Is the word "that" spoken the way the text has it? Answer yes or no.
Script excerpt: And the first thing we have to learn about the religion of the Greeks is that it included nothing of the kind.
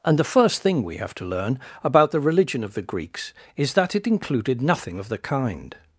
yes